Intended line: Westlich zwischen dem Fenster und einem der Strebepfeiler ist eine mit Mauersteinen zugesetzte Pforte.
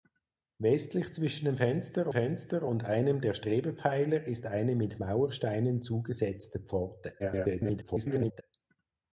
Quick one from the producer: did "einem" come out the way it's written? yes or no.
yes